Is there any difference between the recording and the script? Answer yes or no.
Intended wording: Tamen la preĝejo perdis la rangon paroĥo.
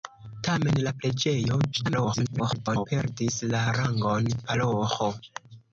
yes